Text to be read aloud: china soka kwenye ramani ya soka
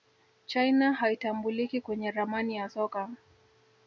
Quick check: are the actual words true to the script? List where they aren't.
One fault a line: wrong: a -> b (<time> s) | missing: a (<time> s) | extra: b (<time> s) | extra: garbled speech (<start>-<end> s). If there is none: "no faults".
wrong: soka -> haitambuliki (0.9 s)